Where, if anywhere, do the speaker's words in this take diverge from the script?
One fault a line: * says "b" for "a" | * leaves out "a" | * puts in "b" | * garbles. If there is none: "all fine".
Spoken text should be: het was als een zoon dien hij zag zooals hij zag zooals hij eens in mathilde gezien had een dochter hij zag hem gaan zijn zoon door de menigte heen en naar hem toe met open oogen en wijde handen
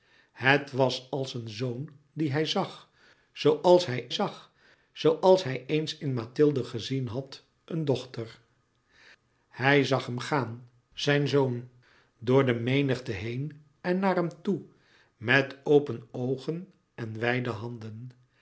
all fine